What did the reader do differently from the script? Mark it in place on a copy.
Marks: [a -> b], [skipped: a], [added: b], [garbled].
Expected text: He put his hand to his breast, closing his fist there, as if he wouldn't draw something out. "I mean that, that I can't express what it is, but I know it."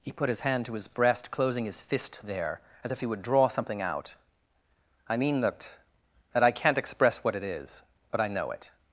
He put his hand to his breast, closing his fist there, as if he [wouldn't -> would] draw something out. "I mean that, that I can't express what it is, but I know it."